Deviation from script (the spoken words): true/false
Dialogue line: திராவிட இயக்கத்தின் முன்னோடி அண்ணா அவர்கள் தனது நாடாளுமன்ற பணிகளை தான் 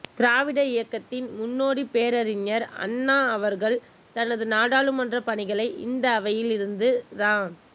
true